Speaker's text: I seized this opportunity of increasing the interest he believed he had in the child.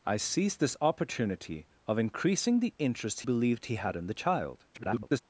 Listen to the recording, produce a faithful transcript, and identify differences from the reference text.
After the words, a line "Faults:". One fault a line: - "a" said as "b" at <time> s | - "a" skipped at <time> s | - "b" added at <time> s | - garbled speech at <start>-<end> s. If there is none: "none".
I seized this opportunity of increasing the interest believed he had in the child. [garbled]
Faults:
- "he" skipped at 3.2 s
- garbled speech at 4.7-5.2 s